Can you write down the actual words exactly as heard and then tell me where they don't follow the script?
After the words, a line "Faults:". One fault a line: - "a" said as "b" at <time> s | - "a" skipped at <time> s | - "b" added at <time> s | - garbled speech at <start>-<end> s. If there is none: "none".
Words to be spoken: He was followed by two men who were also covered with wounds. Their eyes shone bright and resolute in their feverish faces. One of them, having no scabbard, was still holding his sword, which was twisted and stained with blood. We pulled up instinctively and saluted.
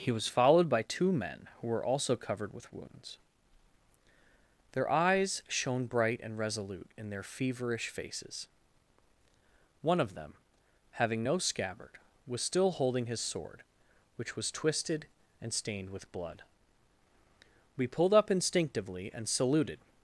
He was followed by two men who were also covered with wounds. Their eyes shone bright and resolute in their feverish faces. One of them, having no scabbard, was still holding his sword, which was twisted and stained with blood. We pulled up instinctively and saluted.
Faults:
none